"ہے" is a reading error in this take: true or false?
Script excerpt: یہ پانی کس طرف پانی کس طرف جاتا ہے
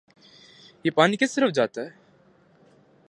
false